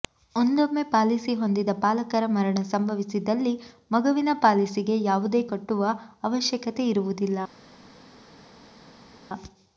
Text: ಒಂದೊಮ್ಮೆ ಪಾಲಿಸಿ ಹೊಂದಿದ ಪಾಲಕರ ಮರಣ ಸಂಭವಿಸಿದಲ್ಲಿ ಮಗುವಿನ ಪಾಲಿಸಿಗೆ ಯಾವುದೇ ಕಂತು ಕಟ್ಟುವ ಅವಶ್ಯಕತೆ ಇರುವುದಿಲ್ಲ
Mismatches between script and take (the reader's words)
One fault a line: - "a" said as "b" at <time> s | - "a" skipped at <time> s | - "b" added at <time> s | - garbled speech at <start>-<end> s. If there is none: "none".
- "ಕಂತು" skipped at 5.4 s